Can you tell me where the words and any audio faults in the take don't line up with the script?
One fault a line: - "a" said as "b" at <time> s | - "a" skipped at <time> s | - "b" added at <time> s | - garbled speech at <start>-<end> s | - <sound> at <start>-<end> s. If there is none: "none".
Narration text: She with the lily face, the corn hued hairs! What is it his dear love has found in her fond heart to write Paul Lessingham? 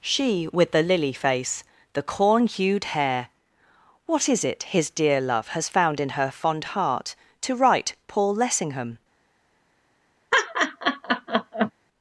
- "hairs" said as "hair" at 3.0 s
- laugh at 10.3-11.7 s